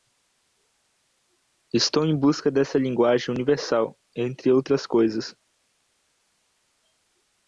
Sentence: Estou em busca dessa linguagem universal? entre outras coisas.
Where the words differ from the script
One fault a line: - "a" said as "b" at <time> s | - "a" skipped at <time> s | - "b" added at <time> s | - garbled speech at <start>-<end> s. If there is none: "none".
none